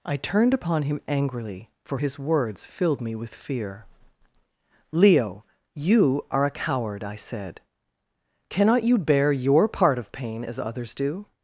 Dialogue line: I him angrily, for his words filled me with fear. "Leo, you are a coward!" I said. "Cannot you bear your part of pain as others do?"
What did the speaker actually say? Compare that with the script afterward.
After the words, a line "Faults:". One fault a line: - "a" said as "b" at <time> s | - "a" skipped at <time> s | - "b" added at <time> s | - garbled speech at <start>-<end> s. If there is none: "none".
I turned upon him angrily, for his words filled me with fear. "Leo, you are a coward!" I said. "Cannot you bear your part of pain as others do?"
Faults:
- "turned upon" added at 0.1 s